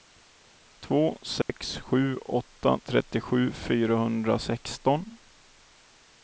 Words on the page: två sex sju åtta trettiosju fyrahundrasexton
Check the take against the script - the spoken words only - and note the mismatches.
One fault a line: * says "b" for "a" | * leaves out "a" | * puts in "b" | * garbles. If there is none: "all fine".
all fine